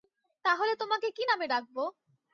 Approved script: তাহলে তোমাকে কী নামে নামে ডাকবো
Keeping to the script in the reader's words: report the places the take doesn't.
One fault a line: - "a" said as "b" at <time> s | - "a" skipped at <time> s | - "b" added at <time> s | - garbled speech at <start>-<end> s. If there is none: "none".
- "নামে" skipped at 1.4 s